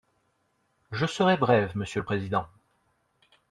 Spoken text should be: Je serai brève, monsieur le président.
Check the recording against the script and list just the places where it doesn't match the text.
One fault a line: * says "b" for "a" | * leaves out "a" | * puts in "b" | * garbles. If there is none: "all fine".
all fine